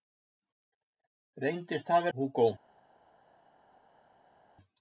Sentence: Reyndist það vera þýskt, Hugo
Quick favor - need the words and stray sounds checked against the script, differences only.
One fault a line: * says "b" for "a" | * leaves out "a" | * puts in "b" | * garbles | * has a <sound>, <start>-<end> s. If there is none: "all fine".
* leaves out "vera þýskt"